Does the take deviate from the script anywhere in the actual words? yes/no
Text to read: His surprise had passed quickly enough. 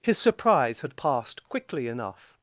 no